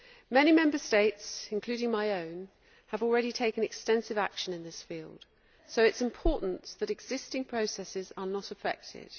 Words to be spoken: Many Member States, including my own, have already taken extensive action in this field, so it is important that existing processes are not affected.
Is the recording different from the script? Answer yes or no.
no